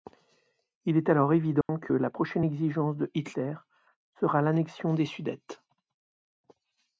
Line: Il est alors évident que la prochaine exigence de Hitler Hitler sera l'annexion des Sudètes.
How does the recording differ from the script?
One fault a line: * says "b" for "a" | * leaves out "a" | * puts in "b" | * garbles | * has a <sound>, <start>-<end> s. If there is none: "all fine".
* has a dropout, 1.6-1.7 s
* leaves out "Hitler"